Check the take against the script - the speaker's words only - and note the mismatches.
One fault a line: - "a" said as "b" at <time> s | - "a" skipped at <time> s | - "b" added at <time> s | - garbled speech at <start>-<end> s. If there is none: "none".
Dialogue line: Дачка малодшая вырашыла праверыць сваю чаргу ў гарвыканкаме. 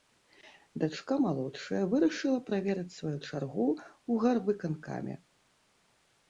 none